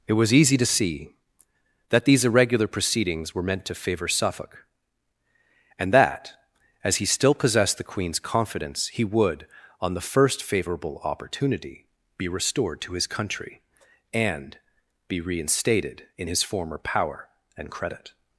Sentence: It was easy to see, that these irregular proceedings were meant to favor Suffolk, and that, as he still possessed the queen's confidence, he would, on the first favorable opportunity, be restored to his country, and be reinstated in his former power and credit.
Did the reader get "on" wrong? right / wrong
right